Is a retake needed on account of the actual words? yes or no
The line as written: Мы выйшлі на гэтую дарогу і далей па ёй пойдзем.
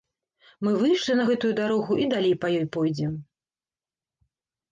no